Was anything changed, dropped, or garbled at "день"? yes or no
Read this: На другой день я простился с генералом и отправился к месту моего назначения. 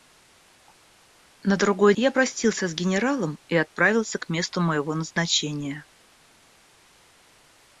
yes